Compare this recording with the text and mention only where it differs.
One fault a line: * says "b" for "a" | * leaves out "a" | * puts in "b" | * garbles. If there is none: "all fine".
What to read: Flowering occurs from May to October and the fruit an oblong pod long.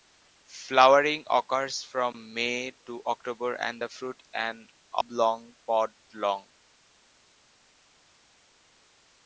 all fine